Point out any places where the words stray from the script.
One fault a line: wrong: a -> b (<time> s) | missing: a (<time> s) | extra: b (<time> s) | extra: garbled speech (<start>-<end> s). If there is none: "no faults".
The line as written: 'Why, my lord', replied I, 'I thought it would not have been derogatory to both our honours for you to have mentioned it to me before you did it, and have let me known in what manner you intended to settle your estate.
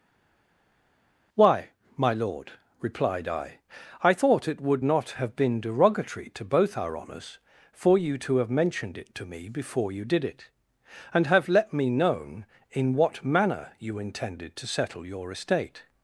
no faults